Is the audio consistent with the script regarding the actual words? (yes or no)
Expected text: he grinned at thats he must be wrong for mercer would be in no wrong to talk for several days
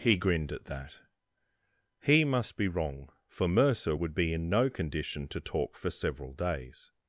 no